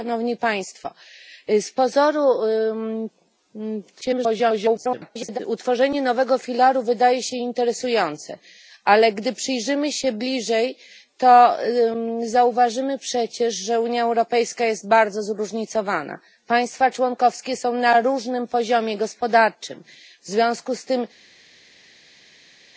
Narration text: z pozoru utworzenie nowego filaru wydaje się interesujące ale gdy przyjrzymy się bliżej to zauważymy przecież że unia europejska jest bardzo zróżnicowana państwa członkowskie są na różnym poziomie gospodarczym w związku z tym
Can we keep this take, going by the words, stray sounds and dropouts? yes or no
no